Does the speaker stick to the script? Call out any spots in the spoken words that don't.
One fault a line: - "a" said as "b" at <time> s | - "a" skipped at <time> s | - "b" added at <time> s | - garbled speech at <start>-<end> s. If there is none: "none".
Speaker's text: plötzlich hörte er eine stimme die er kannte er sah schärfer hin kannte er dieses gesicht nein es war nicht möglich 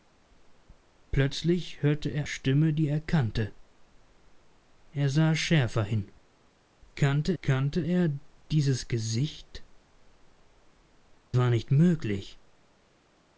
- "eine" skipped at 2.2 s
- "kannte" added at 7.4 s
- "nein es" skipped at 9.6 s